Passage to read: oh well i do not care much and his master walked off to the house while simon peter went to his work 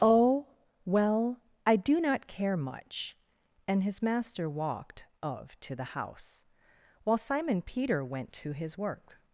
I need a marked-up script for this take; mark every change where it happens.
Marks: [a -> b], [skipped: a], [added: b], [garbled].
oh well i do not care much and his master walked [off -> of] to the house while simon peter went to his work